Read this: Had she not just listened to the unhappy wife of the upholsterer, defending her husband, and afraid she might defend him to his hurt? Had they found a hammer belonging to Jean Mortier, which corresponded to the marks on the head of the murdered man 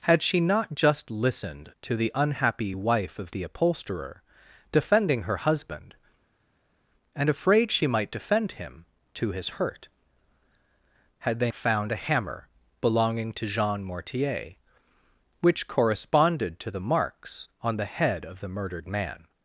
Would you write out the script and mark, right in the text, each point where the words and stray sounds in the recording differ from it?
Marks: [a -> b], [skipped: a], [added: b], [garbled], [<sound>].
Had she not just listened to the unhappy wife of the upholsterer, defending her husband, and afraid she might defend him to his hurt? Had they found a hammer belonging to Jean Mortier, which corresponded to the marks on the head of the murdered man